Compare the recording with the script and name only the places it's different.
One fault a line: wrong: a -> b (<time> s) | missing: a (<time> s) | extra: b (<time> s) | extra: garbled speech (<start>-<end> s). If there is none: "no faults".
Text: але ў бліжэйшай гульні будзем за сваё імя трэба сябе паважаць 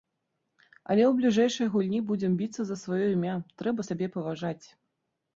extra: біцца (2.4 s)